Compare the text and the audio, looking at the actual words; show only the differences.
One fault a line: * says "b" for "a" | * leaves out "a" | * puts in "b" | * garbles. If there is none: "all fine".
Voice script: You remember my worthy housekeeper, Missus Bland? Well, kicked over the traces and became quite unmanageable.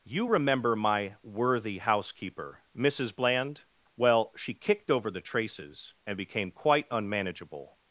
* puts in "she"